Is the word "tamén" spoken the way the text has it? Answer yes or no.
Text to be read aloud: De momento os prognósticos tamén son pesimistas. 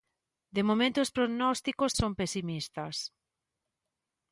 no